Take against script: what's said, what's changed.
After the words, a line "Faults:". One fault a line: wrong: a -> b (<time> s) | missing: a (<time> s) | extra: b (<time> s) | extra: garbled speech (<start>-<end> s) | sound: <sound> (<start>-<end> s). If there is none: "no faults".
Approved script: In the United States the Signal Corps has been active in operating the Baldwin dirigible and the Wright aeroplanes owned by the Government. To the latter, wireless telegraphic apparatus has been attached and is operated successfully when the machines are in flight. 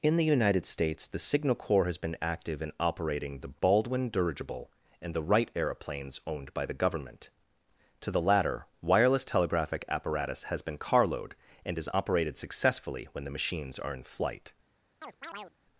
In the United States the Signal Corps has been active in operating the Baldwin dirigible and the Wright aeroplanes owned by the Government. To the latter, wireless telegraphic apparatus has been carload and is operated successfully when the machines are in flight.
Faults:
wrong: attached -> carload (10.8 s)
sound: chirp (15.0-15.5 s)